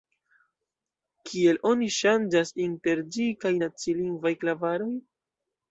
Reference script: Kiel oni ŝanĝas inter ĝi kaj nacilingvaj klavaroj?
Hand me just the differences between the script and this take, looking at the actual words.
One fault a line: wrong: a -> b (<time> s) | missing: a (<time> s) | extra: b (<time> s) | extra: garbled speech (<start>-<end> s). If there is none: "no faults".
no faults